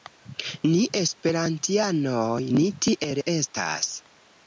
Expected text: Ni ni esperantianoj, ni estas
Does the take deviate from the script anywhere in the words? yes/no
yes